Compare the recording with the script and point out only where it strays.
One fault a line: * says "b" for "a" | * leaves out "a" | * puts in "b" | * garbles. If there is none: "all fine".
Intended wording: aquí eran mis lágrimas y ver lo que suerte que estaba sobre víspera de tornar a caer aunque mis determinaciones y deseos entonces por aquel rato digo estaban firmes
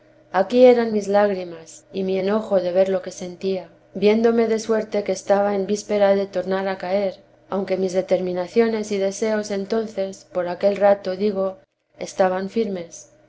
* puts in "mi enojo de"
* puts in "sentía viéndome de"
* says "en" for "sobre"